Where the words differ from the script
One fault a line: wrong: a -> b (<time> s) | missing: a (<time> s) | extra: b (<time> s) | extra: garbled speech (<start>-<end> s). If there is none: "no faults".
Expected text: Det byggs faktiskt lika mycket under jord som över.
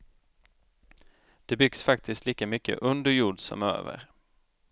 no faults